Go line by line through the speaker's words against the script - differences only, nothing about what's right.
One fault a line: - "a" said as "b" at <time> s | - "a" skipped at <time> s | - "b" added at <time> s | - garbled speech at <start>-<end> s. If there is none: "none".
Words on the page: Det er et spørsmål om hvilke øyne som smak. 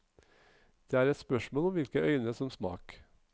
none